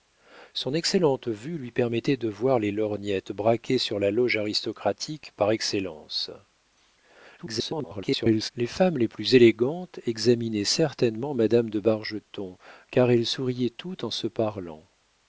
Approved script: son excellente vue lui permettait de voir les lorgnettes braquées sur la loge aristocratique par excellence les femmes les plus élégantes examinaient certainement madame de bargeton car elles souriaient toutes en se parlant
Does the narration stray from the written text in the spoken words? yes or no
yes